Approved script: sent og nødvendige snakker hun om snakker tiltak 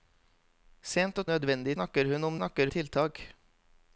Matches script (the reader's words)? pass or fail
pass